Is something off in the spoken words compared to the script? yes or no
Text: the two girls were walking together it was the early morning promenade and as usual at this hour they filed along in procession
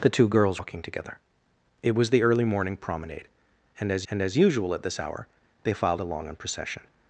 yes